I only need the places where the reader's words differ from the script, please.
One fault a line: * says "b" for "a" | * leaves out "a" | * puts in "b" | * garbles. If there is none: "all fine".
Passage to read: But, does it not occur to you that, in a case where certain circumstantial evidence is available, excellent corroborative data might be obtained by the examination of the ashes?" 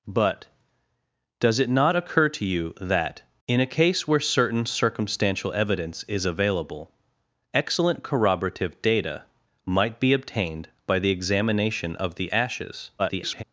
* garbles